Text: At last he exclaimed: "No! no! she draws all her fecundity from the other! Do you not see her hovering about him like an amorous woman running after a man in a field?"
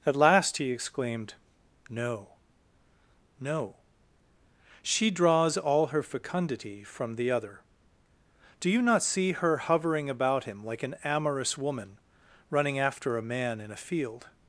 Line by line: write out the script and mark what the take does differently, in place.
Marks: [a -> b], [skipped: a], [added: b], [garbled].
At last he exclaimed: "No! no! she draws all her fecundity from the other! Do you not see her hovering about him like an amorous woman running after a man in a field?"